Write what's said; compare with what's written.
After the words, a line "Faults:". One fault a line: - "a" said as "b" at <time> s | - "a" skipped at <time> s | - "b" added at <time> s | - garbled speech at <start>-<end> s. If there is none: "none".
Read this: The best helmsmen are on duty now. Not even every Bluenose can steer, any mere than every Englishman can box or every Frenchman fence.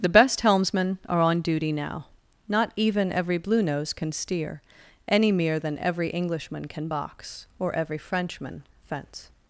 The best helmsmen are on duty now. Not even every Bluenose can steer, any mere than every Englishman can box or every Frenchman fence.
Faults:
none